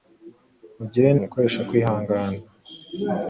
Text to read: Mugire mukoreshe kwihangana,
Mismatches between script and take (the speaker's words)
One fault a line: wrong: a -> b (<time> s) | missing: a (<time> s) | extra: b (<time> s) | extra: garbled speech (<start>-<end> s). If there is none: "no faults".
no faults